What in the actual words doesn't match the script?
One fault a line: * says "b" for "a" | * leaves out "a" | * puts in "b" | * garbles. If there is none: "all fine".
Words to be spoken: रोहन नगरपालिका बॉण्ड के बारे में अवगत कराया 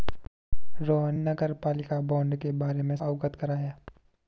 all fine